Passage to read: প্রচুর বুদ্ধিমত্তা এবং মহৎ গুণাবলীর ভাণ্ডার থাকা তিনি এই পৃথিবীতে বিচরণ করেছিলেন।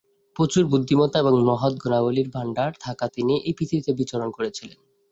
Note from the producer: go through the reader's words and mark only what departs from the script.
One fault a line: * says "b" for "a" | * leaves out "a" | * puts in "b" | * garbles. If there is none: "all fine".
all fine